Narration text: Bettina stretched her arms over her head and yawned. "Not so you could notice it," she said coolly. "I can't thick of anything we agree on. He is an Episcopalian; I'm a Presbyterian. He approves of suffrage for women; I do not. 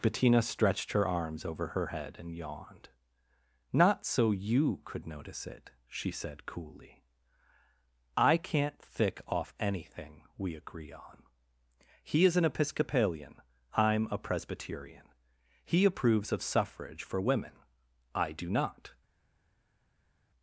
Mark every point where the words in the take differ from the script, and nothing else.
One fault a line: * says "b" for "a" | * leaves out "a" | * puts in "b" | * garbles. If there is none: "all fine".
* says "off" for "of"